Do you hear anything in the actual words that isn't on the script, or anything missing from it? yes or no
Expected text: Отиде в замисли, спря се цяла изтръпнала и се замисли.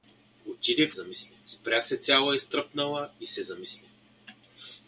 no